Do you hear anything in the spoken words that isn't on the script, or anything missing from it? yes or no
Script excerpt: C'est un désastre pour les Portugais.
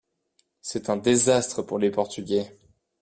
no